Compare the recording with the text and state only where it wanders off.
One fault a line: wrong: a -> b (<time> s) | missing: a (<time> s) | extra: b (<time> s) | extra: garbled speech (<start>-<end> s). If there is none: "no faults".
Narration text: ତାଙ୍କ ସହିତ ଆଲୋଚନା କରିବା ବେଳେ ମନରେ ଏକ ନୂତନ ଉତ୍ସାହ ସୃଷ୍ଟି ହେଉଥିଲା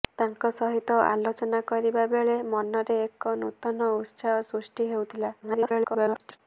extra: garbled speech (5.4-6.4 s)